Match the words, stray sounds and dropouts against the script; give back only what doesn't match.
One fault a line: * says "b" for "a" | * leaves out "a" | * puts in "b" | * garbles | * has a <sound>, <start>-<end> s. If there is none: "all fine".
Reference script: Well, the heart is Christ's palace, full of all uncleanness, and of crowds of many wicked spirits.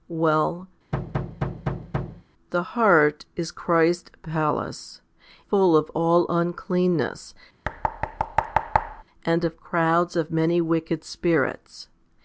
* has a thud, 0.9-2.2 s
* has a thud, 7.6-9.0 s